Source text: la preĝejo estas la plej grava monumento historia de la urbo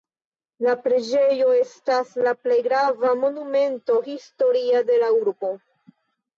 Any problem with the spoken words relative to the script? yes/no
no